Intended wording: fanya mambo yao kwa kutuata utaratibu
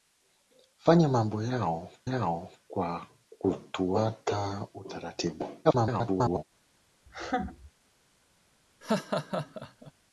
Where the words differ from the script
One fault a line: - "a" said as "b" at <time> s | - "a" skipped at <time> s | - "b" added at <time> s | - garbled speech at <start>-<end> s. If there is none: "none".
- "yao" added at 2.0 s
- garbled speech at 5.6-6.4 s